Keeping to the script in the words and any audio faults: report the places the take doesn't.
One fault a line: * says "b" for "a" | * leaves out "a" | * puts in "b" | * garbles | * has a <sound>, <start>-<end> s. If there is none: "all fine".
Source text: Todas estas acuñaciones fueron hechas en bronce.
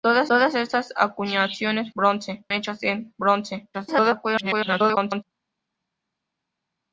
* puts in "todas"
* says "bronce" for "fueron"
* garbles